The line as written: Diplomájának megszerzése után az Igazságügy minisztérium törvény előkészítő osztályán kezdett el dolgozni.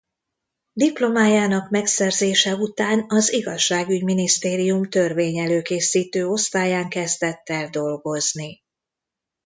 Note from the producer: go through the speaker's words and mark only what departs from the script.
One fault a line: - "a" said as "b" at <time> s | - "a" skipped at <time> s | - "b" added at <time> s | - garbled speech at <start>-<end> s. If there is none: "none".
none